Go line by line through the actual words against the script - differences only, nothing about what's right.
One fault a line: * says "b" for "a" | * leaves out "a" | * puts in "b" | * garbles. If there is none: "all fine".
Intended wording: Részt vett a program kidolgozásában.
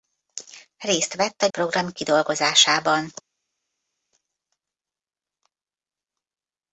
all fine